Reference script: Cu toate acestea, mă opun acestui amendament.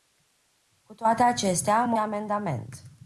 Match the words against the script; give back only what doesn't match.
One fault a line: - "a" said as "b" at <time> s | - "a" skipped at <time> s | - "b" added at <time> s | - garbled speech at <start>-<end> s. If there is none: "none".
- "opun acestui" skipped at 2.0 s